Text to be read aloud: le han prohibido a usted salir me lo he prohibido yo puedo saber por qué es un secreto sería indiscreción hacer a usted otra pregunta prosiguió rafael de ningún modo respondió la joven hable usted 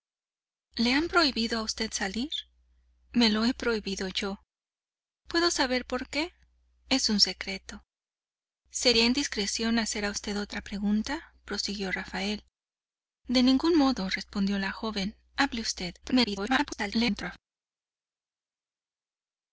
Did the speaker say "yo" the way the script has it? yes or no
yes